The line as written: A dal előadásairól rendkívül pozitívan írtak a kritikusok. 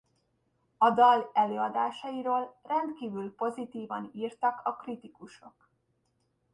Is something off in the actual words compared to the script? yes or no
no